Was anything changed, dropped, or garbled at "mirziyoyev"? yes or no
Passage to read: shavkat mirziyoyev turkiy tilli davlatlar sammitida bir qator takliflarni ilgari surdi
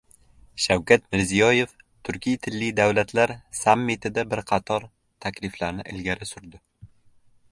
no